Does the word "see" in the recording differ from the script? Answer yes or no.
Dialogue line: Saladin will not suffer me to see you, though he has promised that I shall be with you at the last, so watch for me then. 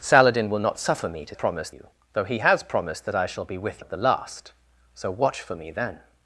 yes